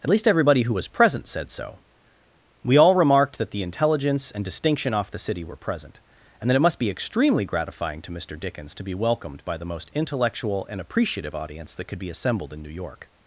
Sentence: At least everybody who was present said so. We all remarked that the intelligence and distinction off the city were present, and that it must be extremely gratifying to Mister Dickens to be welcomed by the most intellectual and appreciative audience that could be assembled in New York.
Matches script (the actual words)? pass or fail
pass